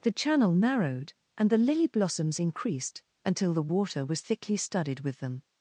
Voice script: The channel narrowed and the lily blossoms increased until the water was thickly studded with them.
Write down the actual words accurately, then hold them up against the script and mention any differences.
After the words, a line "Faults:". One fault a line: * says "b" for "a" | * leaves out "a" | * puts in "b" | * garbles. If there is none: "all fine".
The channel narrowed and the lily blossoms increased until the water was thickly studded with them.
Faults:
all fine